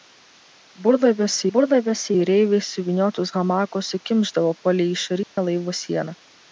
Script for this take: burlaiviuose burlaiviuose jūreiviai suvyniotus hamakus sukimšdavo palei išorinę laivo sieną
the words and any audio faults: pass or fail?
fail